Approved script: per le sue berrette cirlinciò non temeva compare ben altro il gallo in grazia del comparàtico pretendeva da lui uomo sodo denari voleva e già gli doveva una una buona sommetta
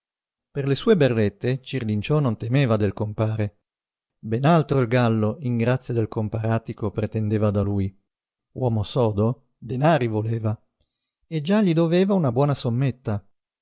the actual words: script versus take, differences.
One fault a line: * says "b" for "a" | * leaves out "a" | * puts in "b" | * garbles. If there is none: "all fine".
* puts in "del"
* leaves out "una"